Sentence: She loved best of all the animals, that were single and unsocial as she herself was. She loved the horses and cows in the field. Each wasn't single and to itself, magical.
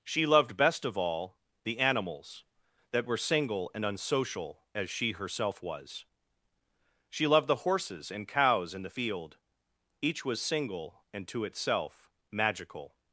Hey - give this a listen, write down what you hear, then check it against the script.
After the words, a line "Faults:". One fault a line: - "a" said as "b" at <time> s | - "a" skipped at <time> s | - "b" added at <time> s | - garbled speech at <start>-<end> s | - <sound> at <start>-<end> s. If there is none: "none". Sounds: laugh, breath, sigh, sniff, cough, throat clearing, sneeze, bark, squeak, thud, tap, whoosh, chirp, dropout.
She loved best of all the animals, that were single and unsocial as she herself was. She loved the horses and cows in the field. Each was single and to itself, magical.
Faults:
- "wasn't" said as "was" at 10.2 s